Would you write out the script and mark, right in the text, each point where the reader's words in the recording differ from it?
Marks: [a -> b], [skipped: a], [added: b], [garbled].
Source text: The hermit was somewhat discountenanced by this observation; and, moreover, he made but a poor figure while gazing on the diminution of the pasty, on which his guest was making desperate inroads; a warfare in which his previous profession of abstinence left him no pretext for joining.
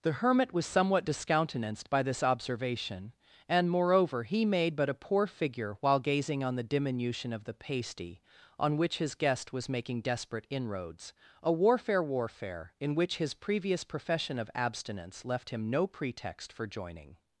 The hermit was somewhat discountenanced by this observation; and, moreover, he made but a poor figure while gazing on the diminution of the pasty, on which his guest was making desperate inroads; a warfare [added: warfare] in which his previous profession of abstinence left him no pretext for joining.